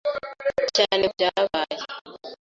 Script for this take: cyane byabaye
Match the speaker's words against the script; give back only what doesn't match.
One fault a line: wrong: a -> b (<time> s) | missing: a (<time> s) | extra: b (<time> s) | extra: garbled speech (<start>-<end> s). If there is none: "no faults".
no faults